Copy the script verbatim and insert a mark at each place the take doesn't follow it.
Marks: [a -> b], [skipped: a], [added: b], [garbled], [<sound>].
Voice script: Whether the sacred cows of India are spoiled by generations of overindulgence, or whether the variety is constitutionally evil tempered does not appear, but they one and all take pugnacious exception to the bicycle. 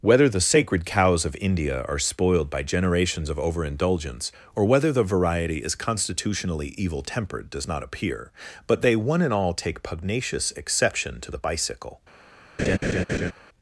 Whether the sacred cows of India are spoiled by generations of overindulgence, or whether the variety is constitutionally evil tempered does not appear, but they one and all take pugnacious exception to the bicycle. [laugh]